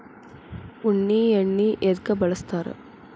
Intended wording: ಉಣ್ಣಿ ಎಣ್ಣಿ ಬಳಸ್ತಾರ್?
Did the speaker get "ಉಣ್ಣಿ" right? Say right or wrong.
right